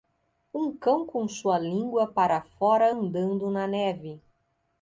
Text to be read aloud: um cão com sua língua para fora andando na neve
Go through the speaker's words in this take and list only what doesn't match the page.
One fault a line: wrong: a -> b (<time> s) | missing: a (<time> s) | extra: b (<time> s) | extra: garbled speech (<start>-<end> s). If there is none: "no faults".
no faults